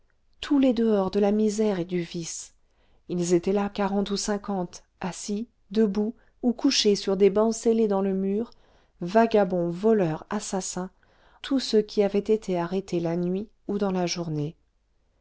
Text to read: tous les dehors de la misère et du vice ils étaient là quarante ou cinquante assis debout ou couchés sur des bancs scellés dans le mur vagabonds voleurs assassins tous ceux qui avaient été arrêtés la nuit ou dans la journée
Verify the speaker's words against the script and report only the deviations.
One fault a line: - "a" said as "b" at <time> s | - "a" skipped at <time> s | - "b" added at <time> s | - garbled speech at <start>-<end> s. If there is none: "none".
none